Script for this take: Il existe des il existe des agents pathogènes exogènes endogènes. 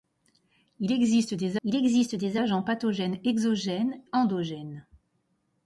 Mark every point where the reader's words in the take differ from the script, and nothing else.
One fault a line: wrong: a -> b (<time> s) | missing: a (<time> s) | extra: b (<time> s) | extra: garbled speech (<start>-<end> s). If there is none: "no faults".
no faults